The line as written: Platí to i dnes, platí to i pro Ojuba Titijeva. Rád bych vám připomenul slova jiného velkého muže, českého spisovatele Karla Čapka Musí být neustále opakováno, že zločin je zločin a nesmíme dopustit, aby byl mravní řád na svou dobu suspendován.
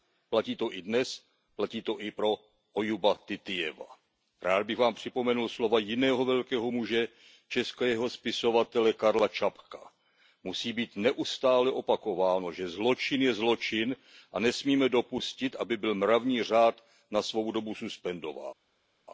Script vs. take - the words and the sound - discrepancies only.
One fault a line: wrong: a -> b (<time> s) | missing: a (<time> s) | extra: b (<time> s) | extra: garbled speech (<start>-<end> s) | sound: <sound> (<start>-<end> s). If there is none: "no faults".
no faults